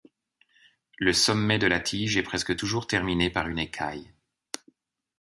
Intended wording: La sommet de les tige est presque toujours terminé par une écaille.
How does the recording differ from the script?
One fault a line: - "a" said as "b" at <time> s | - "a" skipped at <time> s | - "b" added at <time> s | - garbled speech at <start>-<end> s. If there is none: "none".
- "La" said as "Le" at 1.0 s
- "les" said as "la" at 1.7 s